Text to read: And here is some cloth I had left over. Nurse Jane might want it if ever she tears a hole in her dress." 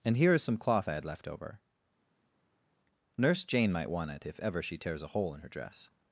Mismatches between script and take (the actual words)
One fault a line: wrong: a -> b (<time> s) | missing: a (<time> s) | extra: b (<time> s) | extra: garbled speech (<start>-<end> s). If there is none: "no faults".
no faults